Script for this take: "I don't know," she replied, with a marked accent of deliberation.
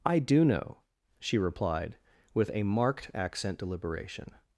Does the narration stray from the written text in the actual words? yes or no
yes